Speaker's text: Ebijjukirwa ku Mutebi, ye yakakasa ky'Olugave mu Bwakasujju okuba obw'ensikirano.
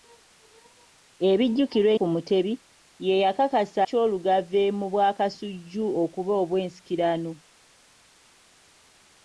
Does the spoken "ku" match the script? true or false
true